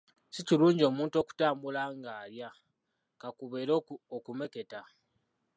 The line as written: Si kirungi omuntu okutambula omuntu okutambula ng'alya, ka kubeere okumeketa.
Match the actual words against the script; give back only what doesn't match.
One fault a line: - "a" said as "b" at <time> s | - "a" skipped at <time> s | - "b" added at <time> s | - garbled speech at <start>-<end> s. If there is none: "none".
- "omuntu okutambula" skipped at 1.8 s